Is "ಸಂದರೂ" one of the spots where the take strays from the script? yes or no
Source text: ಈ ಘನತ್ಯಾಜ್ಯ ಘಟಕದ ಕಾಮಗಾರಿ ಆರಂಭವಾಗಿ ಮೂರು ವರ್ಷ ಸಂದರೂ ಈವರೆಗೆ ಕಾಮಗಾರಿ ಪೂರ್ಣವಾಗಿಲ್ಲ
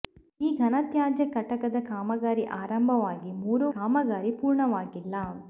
yes